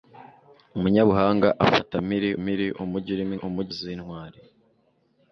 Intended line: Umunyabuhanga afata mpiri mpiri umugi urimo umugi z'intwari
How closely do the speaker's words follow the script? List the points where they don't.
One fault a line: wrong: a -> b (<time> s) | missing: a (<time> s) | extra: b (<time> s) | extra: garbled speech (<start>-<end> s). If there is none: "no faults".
no faults